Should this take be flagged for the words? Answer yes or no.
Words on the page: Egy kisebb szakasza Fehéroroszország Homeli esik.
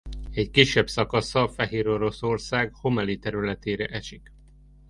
yes